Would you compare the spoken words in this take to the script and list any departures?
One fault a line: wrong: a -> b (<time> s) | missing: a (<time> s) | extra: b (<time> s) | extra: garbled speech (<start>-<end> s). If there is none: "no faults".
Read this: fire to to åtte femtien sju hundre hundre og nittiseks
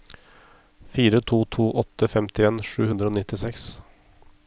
missing: hundre (3.1 s)